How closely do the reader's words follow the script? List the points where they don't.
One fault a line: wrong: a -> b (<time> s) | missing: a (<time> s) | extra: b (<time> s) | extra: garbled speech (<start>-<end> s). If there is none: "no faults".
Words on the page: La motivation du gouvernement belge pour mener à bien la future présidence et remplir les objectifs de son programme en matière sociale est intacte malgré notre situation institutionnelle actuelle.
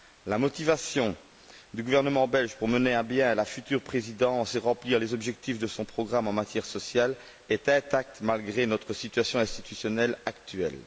no faults